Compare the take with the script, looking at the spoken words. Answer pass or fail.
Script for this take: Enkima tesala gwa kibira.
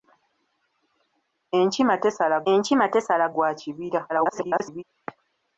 fail